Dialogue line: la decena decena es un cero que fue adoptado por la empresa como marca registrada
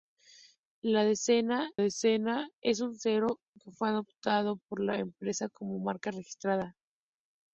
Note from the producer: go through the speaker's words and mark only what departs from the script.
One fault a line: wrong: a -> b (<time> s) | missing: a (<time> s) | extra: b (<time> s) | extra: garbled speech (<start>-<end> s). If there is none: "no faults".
no faults